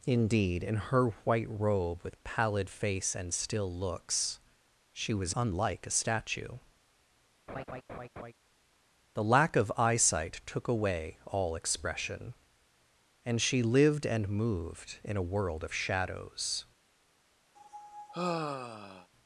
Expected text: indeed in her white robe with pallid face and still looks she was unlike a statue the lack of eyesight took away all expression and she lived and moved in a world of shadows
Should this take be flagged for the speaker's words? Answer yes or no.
no